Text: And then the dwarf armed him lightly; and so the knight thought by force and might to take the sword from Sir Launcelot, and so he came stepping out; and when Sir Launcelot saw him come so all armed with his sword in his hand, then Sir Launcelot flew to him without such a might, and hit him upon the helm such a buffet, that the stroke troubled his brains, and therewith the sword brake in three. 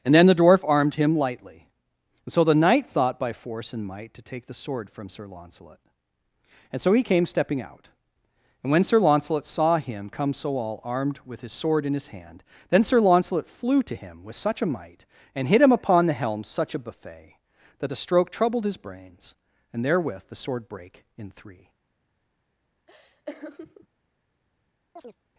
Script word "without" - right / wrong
wrong